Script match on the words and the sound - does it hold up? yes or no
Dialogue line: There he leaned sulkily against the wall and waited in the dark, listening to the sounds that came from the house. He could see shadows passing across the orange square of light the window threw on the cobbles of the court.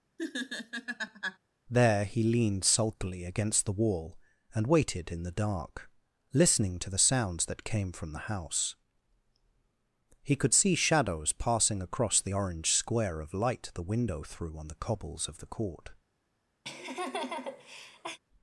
no